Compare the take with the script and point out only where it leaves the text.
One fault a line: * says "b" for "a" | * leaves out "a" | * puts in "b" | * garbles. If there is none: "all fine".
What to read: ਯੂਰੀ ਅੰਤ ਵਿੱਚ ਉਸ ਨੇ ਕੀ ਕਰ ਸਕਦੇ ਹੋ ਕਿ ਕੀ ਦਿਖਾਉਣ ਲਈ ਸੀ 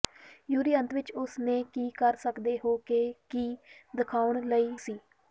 all fine